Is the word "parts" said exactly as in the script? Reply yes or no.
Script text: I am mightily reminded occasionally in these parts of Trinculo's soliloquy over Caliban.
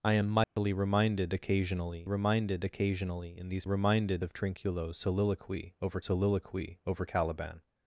no